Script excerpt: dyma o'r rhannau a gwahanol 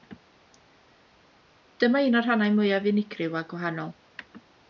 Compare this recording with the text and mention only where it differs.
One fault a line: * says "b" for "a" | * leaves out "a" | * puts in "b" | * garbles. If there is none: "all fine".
* puts in "un"
* puts in "mwyaf unigryw"